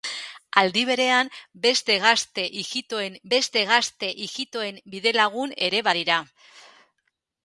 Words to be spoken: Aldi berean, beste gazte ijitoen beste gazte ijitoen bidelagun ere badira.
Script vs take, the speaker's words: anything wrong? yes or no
no